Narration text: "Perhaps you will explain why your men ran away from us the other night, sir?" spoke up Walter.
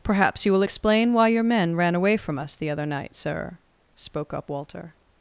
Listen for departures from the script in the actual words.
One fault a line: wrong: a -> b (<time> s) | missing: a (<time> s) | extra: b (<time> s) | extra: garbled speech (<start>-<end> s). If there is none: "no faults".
no faults